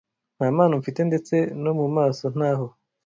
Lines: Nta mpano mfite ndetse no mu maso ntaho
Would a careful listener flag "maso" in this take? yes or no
no